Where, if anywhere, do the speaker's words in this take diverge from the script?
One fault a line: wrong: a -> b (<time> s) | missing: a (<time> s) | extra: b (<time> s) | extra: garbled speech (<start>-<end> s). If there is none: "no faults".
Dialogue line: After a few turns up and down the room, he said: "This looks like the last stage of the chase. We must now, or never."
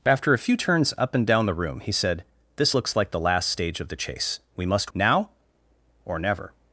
no faults